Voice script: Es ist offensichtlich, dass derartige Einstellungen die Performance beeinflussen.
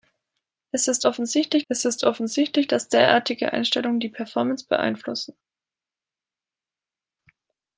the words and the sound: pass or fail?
fail